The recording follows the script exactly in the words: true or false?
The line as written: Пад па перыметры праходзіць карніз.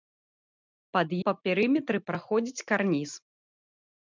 true